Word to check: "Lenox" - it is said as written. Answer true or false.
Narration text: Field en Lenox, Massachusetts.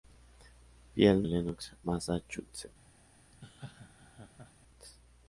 true